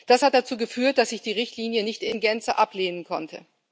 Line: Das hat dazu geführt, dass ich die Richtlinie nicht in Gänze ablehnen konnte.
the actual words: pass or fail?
pass